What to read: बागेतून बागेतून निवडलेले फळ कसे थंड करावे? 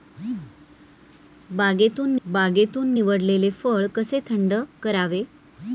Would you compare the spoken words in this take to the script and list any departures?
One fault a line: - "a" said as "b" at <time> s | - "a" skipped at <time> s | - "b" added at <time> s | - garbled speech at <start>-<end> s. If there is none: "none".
none